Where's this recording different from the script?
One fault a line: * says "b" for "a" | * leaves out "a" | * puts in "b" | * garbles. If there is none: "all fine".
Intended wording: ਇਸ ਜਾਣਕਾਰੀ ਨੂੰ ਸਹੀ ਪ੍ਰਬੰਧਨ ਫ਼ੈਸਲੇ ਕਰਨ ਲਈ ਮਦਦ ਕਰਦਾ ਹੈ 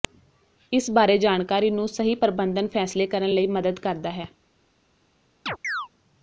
* puts in "ਬਾਰੇ"